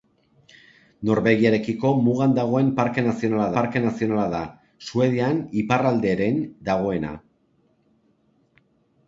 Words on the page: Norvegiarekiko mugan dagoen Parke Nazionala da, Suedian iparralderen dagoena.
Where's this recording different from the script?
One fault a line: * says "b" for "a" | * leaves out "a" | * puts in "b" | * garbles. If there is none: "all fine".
* puts in "Parke Nazionala"